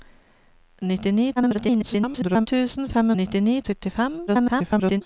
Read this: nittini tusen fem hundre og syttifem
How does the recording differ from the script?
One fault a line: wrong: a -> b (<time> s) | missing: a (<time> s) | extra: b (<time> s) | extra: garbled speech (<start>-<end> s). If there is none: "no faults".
extra: garbled speech (1.4-2.5 s)
wrong: hundre -> nittini (3.2 s)
extra: garbled speech (4.3-5.0 s)